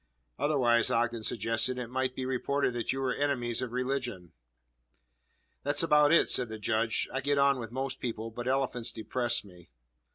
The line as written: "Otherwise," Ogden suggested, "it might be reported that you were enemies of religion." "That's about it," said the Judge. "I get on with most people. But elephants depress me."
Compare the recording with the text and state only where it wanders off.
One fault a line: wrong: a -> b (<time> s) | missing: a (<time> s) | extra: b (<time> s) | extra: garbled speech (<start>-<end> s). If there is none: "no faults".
no faults